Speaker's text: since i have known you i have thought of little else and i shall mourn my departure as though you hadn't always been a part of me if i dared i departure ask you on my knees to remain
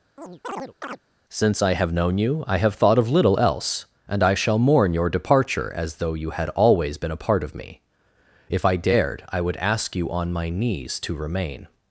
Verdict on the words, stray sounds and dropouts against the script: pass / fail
fail